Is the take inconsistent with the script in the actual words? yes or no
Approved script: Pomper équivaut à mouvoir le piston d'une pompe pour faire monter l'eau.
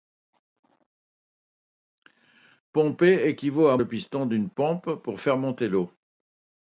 yes